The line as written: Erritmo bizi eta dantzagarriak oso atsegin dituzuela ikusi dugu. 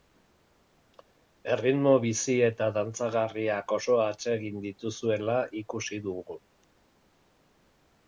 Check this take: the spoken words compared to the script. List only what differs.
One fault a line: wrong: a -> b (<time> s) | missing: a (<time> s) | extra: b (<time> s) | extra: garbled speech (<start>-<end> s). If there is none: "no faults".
no faults